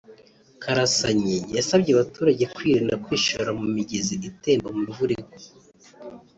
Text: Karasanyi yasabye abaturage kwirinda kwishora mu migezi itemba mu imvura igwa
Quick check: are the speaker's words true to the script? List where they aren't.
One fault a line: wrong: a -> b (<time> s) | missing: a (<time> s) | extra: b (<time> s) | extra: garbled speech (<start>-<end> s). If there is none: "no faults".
no faults